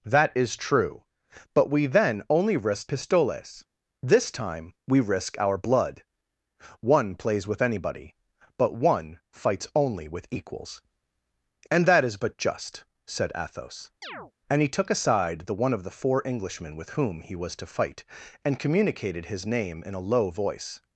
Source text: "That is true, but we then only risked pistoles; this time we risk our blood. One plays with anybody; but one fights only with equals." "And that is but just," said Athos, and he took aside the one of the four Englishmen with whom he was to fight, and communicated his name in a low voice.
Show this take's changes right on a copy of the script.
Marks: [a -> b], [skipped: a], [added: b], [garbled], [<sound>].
"That is true, but we then only risked pistoles; this time we risk our blood. One plays with anybody; but one fights only with equals." "And that is but just," said Athos, [chirp] and he took aside the one of the four Englishmen with whom he was to fight, and communicated his name in a low voice.